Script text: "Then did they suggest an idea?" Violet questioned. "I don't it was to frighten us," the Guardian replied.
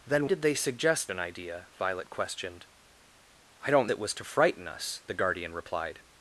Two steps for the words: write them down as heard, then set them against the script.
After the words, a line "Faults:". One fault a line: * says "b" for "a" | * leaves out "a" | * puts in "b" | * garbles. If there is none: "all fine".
"Then did they suggest an idea?" Violet questioned. "I don't it was to frighten us," the Guardian replied.
Faults:
all fine